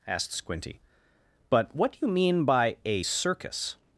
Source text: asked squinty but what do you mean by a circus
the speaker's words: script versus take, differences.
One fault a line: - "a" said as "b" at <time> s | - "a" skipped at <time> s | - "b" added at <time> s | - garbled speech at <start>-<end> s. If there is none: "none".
none